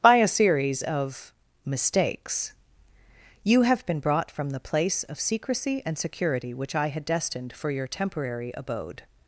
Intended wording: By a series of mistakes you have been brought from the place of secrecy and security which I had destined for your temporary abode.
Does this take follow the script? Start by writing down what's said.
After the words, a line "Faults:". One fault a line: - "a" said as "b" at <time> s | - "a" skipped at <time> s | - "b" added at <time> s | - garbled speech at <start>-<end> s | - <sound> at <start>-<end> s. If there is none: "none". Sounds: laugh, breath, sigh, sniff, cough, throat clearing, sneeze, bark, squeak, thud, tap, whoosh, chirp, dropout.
By a series of mistakes you have been brought from the place of secrecy and security which I had destined for your temporary abode.
Faults:
none